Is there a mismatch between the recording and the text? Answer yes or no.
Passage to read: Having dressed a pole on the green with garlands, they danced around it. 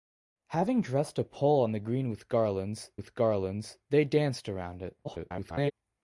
yes